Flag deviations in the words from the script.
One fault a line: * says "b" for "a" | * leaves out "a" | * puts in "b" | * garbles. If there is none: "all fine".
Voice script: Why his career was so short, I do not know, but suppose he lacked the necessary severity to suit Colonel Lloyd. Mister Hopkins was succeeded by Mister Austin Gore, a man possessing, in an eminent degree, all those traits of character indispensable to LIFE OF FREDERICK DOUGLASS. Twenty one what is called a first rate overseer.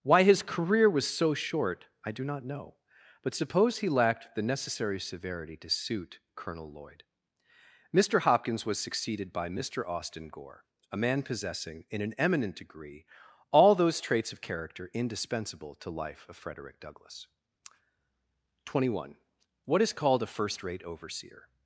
all fine